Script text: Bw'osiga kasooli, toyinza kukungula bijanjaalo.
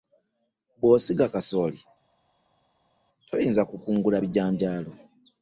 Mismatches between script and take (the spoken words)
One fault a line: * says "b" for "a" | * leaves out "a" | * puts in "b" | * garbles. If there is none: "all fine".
all fine